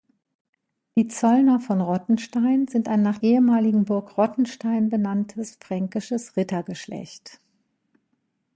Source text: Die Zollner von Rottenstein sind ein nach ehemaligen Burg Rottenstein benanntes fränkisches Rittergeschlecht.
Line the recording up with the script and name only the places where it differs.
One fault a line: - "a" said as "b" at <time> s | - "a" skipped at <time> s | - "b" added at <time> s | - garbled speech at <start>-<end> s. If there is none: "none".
none